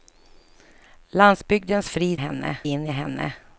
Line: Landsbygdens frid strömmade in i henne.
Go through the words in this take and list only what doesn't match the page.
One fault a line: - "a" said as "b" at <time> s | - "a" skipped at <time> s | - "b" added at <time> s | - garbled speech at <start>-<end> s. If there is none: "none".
- "strömmade" said as "henne" at 2.2 s